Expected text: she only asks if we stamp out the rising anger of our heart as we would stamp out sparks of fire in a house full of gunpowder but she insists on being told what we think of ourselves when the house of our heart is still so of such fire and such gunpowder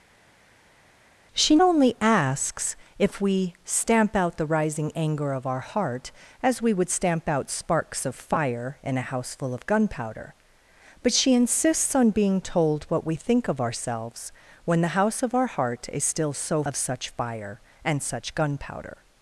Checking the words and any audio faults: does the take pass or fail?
pass